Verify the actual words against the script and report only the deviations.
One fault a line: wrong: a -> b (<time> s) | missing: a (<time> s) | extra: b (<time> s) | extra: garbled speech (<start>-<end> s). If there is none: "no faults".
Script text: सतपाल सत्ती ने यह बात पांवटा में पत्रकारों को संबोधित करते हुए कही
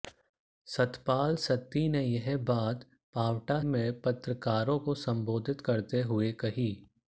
no faults